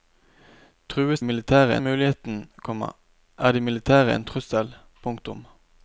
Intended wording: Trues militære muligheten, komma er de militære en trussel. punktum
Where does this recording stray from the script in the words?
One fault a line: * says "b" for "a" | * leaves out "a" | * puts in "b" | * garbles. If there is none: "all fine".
all fine